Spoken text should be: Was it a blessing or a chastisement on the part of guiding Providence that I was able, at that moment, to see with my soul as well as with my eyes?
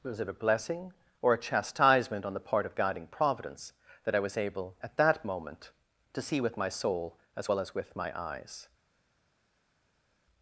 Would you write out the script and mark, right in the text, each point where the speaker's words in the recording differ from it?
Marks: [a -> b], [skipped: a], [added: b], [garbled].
Was it a blessing or a chastisement on the part of guiding Providence that I was able, at that moment, to see with my soul as well as with my eyes?